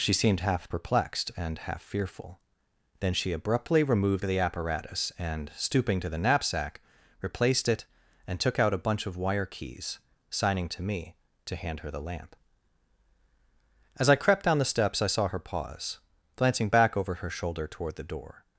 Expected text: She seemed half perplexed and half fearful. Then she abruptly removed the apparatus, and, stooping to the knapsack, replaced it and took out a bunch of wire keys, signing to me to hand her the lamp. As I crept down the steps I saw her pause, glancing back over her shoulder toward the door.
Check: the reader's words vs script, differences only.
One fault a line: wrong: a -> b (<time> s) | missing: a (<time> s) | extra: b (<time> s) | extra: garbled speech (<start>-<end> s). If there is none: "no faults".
no faults